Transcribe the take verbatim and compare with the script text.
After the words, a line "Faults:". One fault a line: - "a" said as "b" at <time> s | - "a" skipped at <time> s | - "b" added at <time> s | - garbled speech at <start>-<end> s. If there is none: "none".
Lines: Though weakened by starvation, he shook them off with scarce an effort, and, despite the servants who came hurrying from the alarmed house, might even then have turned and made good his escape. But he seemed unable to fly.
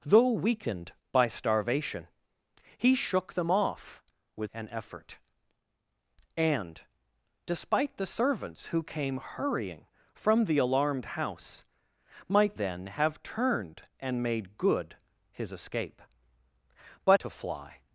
Though weakened by starvation, he shook them off with an effort, and, despite the servants who came hurrying from the alarmed house, might then have turned and made good his escape. But to fly.
Faults:
- "scarce" skipped at 4.5 s
- "even" skipped at 12.5 s
- "he seemed unable" skipped at 17.2 s